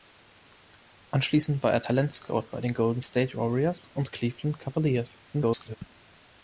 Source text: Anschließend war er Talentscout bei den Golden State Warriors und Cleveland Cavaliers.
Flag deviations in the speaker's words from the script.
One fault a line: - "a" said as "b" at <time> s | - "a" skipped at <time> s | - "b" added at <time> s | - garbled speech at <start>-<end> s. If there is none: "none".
- garbled speech at 5.3-5.8 s